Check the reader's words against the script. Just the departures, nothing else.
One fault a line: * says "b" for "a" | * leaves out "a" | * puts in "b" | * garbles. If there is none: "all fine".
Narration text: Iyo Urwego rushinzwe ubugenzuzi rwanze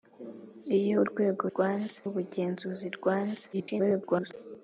* says "rwanze" for "rushinzwe"
* garbles